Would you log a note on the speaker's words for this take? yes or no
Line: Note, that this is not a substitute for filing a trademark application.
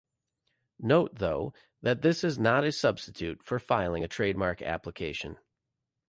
yes